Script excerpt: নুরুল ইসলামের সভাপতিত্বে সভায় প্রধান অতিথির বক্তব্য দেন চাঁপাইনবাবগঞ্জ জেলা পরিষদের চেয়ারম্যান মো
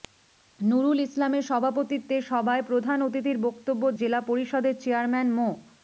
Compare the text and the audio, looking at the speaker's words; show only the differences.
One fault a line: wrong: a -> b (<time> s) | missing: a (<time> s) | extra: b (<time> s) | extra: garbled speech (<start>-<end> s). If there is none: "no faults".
missing: দেন চাঁপাইনবাবগঞ্জ (3.8 s)